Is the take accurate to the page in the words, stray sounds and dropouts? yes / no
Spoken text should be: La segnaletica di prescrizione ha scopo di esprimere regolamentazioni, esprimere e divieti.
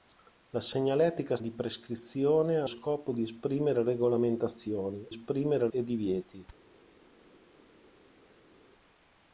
yes